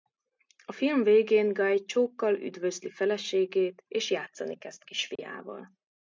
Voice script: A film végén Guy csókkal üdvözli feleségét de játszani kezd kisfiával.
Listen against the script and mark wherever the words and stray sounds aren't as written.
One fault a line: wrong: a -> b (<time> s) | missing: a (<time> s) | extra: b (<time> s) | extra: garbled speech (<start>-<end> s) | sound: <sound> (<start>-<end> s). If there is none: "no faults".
wrong: de -> és (3.9 s)
sound: dropout (5.2-5.2 s)